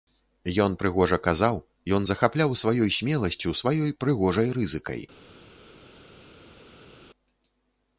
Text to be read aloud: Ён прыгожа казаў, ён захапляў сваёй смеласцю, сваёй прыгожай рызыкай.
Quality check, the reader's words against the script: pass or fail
pass